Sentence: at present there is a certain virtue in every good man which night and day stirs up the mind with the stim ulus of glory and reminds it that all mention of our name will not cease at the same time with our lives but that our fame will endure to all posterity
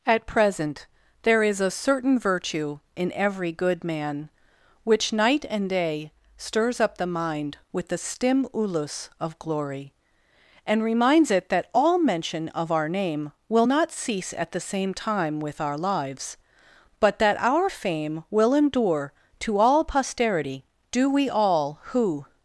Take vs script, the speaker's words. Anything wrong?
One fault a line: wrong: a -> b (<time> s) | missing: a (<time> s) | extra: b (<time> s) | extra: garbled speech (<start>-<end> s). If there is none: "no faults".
extra: do we all who (20.9 s)